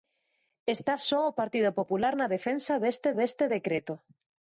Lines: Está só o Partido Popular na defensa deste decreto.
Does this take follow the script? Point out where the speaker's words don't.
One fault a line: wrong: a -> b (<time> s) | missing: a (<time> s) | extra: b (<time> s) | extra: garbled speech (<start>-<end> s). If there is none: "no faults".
extra: deste (3.2 s)